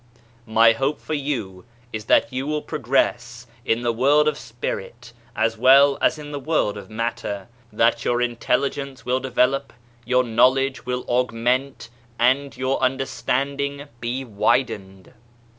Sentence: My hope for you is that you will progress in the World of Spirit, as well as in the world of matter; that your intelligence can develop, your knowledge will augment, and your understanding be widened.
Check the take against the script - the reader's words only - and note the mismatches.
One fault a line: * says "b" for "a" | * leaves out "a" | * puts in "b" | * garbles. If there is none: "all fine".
* says "will" for "can"